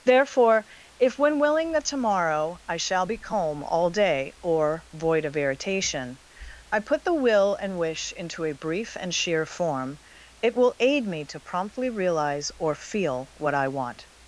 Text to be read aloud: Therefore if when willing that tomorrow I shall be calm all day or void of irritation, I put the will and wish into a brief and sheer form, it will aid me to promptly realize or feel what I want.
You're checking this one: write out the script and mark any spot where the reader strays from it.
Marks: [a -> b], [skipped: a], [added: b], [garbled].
Therefore if when willing that tomorrow I shall be calm all day or void of irritation, I put the will and wish into a brief and sheer form, it will aid me to promptly realize or feel what I want.